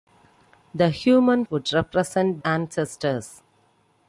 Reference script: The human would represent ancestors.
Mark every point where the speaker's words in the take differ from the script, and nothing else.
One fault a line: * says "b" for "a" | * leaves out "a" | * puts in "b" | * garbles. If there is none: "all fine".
all fine